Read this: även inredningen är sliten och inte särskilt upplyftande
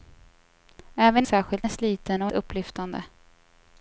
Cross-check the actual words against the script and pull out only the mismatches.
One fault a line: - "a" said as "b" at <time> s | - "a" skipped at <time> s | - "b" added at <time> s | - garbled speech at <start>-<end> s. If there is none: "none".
- "inredningen" said as "särskilt" at 1.2 s
- "inte särskilt" skipped at 2.3 s